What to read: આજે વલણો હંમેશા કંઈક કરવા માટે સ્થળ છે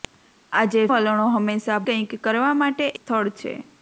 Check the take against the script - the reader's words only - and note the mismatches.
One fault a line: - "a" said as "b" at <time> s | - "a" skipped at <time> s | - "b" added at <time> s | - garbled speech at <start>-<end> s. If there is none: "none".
none